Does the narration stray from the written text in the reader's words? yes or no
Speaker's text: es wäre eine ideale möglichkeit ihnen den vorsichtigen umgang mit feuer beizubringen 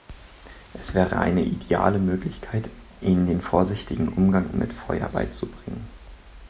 no